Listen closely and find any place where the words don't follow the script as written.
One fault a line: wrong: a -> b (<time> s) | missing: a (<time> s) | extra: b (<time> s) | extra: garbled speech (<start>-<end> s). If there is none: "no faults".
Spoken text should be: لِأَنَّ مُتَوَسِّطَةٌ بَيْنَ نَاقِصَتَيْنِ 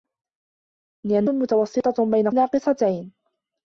no faults